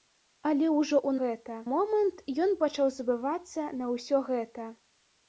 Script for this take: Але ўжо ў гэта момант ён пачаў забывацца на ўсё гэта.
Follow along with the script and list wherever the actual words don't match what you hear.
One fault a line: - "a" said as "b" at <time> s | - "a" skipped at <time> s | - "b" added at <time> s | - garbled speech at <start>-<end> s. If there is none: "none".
none